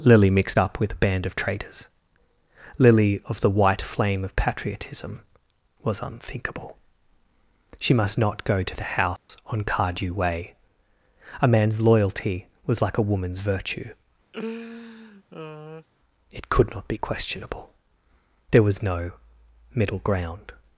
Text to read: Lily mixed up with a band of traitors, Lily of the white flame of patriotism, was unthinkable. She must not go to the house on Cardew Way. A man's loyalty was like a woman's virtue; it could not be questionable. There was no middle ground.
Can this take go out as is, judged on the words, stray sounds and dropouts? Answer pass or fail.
fail